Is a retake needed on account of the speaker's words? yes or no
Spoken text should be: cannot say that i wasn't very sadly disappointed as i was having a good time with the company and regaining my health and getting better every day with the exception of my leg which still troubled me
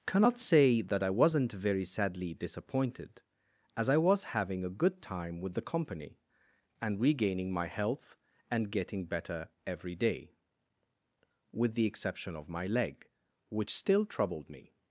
no